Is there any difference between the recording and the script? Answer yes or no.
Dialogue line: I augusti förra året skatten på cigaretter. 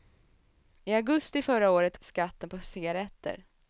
no